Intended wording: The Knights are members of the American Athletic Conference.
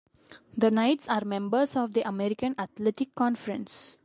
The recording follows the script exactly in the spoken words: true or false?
true